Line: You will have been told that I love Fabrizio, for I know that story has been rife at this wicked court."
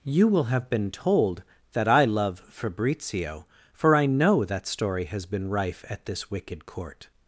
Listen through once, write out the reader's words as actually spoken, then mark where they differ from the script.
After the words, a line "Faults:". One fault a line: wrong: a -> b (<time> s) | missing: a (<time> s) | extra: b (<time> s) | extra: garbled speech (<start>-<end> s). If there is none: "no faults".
You will have been told that I love Fabrizio, for I know that story has been rife at this wicked court."
Faults:
no faults